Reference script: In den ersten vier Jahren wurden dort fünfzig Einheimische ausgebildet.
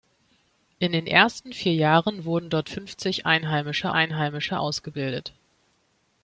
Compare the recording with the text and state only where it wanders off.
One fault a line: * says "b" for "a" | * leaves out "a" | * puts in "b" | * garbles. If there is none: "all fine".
* puts in "Einheimische"